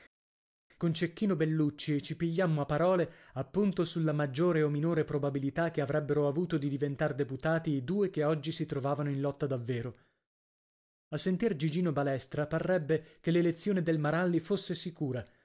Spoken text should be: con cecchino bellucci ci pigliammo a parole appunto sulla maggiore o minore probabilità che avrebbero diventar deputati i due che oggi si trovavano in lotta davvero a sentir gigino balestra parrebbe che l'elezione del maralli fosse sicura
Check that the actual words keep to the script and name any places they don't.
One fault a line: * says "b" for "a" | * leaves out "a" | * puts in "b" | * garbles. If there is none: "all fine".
* puts in "avuto di"